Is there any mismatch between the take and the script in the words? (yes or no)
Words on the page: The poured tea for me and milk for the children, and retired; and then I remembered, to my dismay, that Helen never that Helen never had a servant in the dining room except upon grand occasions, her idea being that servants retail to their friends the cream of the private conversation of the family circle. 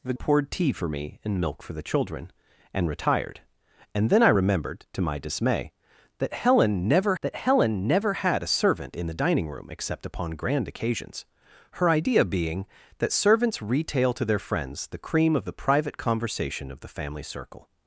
no